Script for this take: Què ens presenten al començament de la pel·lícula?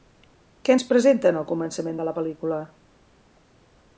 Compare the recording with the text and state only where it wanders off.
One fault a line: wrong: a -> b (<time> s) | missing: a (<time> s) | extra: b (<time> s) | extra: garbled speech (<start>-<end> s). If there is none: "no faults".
no faults